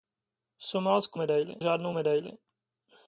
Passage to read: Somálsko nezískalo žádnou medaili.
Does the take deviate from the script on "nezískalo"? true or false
true